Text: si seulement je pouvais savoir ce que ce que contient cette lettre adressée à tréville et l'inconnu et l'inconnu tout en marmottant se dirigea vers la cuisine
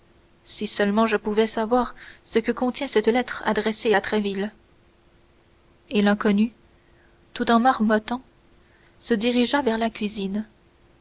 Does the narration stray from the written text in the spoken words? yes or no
yes